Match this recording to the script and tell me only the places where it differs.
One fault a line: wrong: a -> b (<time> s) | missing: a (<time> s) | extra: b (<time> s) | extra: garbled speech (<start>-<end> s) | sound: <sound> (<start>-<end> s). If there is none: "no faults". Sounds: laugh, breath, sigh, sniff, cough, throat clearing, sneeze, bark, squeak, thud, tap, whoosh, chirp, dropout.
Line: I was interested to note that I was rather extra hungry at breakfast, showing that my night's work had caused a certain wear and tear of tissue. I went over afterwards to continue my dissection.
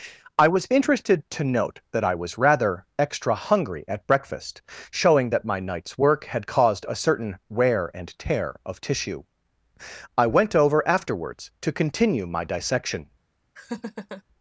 sound: laugh (13.6-14.2 s)